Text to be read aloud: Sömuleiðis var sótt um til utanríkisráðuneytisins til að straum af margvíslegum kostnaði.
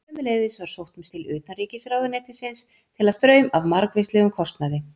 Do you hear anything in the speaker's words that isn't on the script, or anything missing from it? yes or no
no